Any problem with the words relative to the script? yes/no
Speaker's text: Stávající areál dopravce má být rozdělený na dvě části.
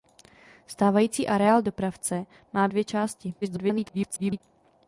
yes